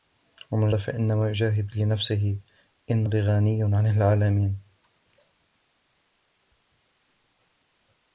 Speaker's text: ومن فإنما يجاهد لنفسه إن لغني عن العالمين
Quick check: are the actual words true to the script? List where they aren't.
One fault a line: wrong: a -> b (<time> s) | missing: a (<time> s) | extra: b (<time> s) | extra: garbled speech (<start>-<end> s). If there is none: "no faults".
no faults